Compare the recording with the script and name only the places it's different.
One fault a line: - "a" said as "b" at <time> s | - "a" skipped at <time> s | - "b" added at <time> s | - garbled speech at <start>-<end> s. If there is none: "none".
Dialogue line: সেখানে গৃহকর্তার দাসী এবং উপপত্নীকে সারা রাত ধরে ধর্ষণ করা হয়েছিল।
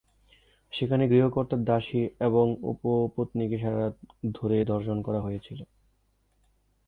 none